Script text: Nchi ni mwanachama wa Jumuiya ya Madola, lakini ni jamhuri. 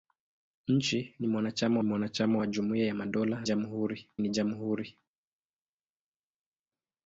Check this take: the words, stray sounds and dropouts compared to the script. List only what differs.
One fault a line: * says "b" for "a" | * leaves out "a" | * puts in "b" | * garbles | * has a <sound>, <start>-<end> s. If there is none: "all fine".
* puts in "mwanachama"
* says "jamhuri" for "lakini"